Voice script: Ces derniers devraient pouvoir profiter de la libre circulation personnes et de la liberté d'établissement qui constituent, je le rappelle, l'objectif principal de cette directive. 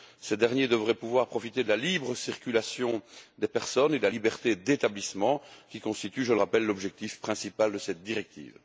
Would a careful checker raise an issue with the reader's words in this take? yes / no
yes